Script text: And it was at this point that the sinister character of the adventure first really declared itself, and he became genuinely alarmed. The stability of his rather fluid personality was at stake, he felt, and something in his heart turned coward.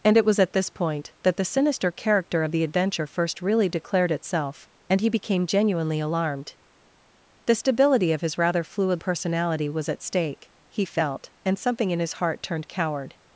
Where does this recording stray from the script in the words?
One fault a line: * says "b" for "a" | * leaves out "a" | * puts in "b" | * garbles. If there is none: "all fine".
all fine